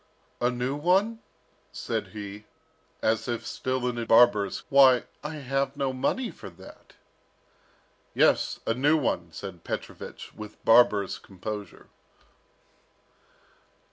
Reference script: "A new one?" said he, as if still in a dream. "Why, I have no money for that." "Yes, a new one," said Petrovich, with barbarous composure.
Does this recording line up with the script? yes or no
no